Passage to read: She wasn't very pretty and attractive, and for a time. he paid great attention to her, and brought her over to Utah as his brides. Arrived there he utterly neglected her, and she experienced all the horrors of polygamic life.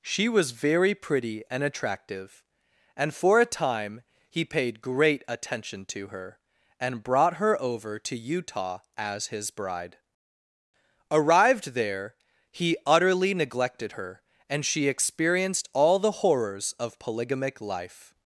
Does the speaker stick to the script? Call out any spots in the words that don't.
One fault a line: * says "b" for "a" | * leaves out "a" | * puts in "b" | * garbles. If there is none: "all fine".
* says "was" for "wasn't"
* says "bride" for "brides"